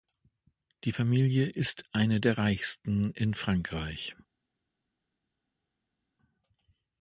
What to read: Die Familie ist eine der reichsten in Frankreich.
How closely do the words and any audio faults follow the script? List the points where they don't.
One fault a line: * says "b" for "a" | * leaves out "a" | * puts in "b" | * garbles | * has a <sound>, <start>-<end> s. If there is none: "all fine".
all fine